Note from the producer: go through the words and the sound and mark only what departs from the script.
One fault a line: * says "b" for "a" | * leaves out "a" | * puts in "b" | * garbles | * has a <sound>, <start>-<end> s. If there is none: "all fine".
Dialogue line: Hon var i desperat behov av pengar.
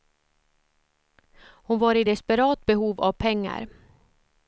all fine